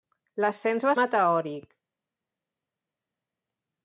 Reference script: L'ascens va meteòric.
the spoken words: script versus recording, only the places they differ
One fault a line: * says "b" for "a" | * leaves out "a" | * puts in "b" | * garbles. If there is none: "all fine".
all fine